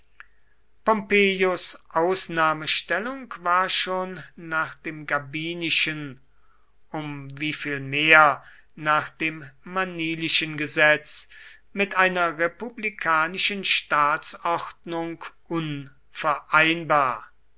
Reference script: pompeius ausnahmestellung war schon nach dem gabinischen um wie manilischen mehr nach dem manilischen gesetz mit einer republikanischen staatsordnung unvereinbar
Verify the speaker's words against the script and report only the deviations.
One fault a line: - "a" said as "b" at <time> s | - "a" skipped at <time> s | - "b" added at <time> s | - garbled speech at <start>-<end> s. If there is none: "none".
- "manilischen" said as "viel" at 7.5 s